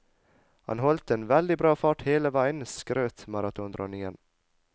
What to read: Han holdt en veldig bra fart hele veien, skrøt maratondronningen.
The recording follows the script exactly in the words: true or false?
true